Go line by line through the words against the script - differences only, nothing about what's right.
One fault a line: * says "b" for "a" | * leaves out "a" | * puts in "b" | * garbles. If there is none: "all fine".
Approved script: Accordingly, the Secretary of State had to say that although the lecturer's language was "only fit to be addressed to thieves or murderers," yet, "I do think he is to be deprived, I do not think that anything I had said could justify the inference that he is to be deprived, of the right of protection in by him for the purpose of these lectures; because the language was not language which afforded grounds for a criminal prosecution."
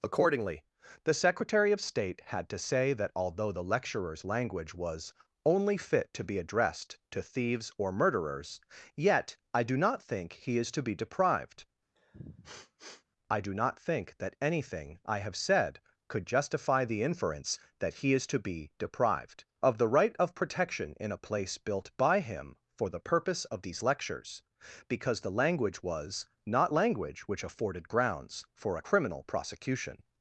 * puts in "not"
* says "have" for "had"
* puts in "a place built"